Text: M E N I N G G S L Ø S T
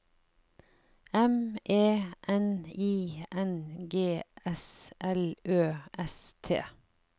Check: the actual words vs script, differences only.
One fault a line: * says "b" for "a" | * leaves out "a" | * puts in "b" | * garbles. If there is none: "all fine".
* leaves out "G"